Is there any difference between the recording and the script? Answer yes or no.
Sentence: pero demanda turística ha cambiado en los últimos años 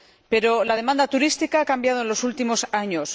yes